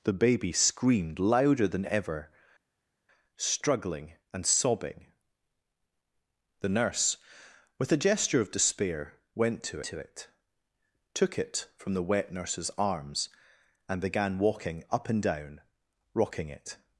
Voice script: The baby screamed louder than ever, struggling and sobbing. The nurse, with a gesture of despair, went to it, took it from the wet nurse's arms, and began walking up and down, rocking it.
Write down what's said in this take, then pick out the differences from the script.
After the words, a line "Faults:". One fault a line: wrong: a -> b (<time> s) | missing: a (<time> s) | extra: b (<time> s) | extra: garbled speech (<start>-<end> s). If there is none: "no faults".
The baby screamed louder than ever, struggling and sobbing. The nurse, with a gesture of despair, went to to it, took it from the wet nurse's arms, and began walking up and down, rocking it.
Faults:
extra: to (9.8 s)